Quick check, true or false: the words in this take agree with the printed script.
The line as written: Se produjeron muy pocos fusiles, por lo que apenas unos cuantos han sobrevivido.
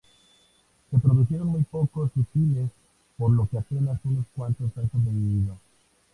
true